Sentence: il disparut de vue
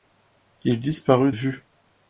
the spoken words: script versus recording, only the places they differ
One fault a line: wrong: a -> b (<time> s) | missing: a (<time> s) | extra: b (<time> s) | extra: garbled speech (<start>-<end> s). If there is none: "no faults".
missing: de (1.3 s)